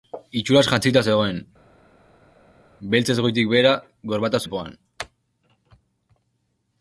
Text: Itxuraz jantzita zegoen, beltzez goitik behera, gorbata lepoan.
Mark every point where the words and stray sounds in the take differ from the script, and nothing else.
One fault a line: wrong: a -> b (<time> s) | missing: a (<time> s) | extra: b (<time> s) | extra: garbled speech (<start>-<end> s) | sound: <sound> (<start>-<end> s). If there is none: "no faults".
no faults